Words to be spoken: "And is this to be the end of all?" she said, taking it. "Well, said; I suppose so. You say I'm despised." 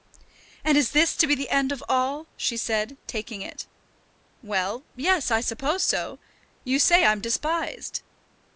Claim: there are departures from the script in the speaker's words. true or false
true